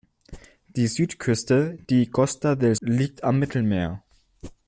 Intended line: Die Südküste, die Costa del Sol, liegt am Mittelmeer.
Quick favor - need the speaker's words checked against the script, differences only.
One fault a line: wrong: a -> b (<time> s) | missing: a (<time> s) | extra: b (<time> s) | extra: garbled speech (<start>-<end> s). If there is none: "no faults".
missing: Sol (2.8 s)